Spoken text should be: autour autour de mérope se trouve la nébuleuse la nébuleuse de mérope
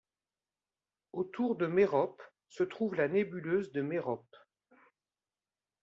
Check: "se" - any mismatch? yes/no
no